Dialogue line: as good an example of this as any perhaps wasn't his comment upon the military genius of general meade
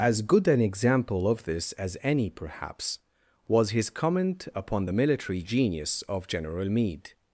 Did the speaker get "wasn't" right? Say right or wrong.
wrong